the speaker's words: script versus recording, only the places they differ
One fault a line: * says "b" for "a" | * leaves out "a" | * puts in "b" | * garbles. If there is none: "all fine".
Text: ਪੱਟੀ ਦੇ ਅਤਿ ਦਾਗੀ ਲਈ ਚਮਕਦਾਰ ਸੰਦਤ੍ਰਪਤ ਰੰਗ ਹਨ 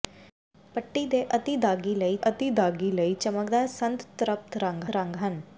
* puts in "ਅਤਿ ਦਾਗੀ ਲਈ"
* puts in "ਰੰਗ"